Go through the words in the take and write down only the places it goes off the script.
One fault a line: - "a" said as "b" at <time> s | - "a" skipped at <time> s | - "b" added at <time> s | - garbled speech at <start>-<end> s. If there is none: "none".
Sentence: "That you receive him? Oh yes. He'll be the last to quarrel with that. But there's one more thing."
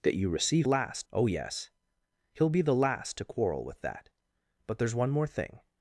- "him" said as "last" at 0.6 s